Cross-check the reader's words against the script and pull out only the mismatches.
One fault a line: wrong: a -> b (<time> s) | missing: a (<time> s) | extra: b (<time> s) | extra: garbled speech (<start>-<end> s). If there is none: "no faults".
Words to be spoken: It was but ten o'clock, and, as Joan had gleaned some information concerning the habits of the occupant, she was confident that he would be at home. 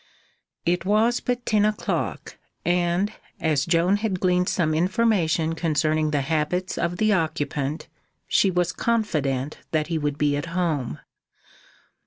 no faults